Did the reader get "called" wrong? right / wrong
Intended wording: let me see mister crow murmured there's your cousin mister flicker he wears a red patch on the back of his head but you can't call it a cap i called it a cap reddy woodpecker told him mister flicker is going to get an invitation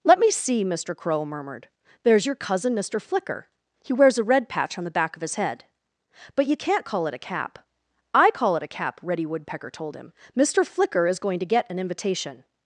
wrong